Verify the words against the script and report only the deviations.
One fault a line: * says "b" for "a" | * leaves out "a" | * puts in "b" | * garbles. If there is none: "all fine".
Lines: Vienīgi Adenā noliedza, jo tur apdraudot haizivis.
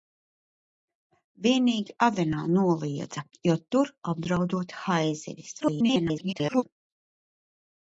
* garbles